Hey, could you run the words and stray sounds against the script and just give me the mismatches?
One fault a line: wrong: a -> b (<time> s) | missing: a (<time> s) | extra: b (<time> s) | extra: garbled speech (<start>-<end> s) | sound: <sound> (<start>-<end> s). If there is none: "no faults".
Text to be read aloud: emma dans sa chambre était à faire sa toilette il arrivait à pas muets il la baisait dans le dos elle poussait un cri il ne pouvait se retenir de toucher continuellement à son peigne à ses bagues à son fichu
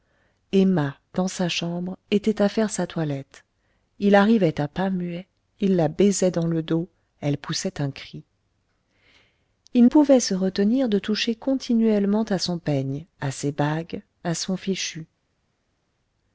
missing: ne (9.8 s)